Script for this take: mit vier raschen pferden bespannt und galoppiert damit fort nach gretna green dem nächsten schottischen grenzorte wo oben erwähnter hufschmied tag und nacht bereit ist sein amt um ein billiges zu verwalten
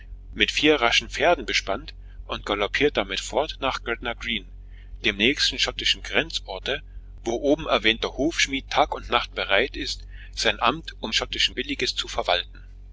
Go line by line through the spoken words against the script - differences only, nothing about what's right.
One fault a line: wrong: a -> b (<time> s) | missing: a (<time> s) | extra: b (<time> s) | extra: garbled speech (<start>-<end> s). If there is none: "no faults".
wrong: ein -> schottischen (11.1 s)